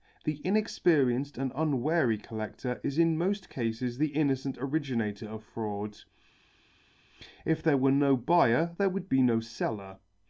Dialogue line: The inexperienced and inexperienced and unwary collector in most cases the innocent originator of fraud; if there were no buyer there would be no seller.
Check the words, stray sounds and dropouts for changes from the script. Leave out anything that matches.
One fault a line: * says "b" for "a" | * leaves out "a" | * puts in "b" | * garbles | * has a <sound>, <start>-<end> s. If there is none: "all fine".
* leaves out "inexperienced and"
* puts in "is"